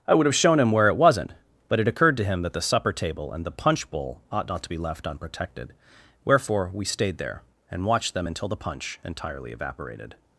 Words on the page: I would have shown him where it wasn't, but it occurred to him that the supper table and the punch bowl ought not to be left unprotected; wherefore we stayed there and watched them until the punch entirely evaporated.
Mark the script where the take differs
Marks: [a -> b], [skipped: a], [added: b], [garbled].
I would have shown him where it wasn't, but it occurred to him that the supper table and the punch bowl ought not to be left unprotected; wherefore we stayed there and watched them until the punch entirely evaporated.